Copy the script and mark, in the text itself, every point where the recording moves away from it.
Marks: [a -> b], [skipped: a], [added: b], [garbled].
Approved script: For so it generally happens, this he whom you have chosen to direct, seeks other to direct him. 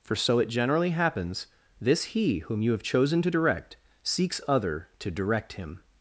For so it generally happens, this he whom you have chosen to direct, seeks other to direct him.